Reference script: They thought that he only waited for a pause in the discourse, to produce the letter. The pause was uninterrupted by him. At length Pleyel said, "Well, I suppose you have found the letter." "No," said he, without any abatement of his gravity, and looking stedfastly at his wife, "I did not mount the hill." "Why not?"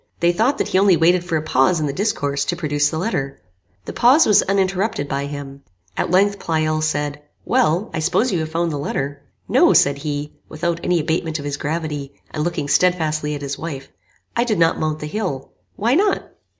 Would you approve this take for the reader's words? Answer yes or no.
yes